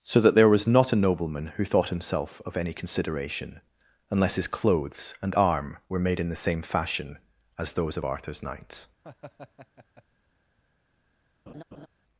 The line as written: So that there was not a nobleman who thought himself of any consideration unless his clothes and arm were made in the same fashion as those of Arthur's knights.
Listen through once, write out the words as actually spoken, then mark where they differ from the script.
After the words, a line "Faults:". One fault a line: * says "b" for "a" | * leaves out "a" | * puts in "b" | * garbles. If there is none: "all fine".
So that there was not a nobleman who thought himself of any consideration unless his clothes and arm were made in the same fashion as those of Arthur's knights.
Faults:
all fine